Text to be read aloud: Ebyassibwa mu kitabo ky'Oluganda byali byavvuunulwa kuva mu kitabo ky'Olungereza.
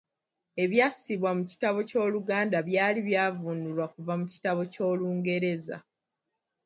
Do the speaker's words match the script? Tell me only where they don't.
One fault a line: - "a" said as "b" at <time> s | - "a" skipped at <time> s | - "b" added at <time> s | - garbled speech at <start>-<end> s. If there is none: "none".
none